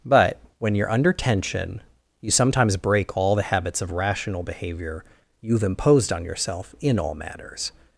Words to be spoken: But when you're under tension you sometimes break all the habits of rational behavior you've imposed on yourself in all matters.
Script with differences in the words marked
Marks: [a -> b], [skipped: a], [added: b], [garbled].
But when you're under tension you sometimes break all the habits of rational behavior you've imposed on yourself in all matters.